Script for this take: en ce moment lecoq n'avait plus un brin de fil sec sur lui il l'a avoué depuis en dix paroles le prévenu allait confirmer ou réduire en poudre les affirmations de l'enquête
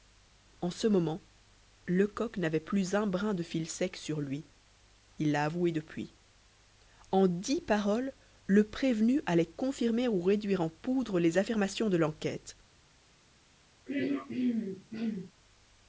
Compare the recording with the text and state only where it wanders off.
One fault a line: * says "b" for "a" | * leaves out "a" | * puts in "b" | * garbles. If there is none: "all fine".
all fine